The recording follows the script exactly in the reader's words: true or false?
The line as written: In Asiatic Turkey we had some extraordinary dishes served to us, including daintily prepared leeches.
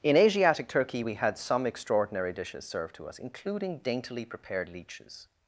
true